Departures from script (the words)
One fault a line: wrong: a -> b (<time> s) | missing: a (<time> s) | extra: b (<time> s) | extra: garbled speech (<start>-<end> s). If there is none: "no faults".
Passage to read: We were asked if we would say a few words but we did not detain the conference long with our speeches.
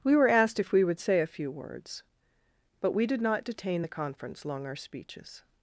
missing: with (4.6 s)